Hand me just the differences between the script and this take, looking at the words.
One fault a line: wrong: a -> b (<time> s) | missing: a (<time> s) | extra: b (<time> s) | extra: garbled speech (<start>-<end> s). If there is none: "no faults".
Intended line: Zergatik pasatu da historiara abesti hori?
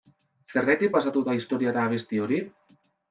no faults